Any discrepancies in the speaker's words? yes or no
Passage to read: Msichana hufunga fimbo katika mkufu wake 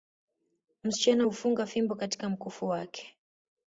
no